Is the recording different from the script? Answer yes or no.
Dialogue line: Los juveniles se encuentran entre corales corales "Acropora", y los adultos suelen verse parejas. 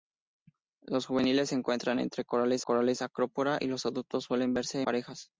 no